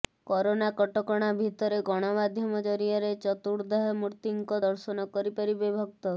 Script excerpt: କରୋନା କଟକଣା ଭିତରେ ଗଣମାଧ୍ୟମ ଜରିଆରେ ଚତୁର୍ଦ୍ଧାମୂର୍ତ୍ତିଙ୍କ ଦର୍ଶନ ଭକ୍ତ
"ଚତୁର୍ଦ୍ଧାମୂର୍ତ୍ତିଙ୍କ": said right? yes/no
yes